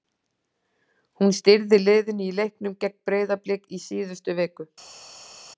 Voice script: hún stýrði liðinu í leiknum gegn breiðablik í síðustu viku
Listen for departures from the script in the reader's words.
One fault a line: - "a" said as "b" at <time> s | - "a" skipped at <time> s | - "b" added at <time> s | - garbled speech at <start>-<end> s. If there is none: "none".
none